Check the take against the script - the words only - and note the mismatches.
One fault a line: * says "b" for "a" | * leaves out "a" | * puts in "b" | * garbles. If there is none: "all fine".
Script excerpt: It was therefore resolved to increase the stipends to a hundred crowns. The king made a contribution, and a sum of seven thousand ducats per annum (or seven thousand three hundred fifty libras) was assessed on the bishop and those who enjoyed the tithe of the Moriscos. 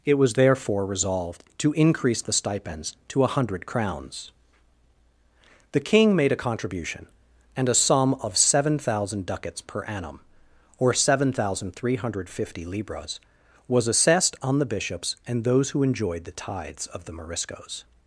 * says "bishops" for "bishop"
* says "tithes" for "tithe"